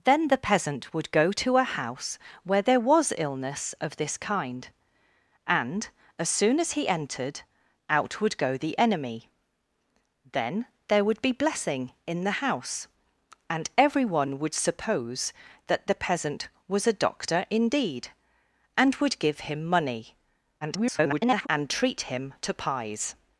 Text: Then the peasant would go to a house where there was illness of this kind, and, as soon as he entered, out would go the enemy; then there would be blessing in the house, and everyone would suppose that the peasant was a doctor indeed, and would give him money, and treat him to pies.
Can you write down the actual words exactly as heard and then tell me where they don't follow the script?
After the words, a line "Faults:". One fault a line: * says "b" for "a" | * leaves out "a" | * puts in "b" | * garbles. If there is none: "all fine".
Then the peasant would go to a house where there was illness of this kind, and, as soon as he entered, out would go the enemy; then there would be blessing in the house, and everyone would suppose that the peasant was a doctor indeed, and would give him money, [garbled] and treat him to pies.
Faults:
* garbles